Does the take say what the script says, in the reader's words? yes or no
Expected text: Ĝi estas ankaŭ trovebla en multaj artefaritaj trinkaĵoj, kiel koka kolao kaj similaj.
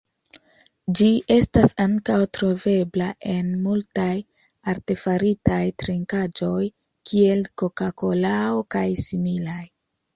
yes